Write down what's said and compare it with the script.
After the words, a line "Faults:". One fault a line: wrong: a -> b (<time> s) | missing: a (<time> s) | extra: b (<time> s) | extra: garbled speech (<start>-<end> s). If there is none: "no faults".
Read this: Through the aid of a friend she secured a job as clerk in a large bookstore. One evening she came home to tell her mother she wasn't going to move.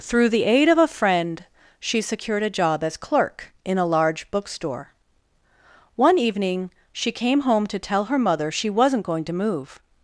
Through the aid of a friend she secured a job as clerk in a large bookstore. One evening she came home to tell her mother she wasn't going to move.
Faults:
no faults